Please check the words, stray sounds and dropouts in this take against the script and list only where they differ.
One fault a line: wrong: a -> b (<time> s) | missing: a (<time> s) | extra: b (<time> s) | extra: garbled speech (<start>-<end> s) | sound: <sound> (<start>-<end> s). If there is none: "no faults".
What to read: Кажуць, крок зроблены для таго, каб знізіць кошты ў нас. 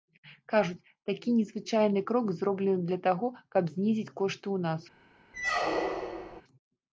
extra: такі незвычайны (1.1 s)
sound: squeak (5.3-6.4 s)